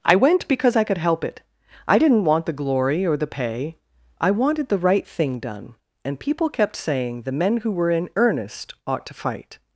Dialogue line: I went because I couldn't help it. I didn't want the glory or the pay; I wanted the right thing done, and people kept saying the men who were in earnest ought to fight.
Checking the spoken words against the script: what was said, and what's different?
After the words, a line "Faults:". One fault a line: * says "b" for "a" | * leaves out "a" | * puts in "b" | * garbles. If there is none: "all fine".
I went because I could help it. I didn't want the glory or the pay; I wanted the right thing done, and people kept saying the men who were in earnest ought to fight.
Faults:
* says "could" for "couldn't"